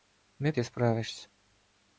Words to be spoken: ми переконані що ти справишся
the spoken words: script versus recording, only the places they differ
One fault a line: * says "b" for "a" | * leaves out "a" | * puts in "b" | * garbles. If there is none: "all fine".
* leaves out "переконані що"